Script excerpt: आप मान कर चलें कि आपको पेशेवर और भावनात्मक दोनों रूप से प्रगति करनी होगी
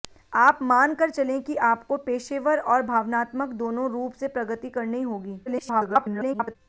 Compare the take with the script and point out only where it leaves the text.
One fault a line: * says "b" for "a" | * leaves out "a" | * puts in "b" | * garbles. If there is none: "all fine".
* garbles